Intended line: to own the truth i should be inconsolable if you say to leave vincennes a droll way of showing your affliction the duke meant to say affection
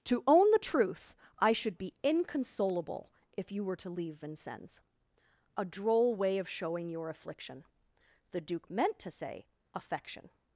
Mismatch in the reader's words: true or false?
true